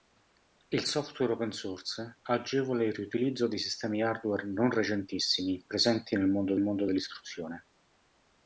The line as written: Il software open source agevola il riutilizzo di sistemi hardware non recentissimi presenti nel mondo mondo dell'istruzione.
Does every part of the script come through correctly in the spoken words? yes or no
yes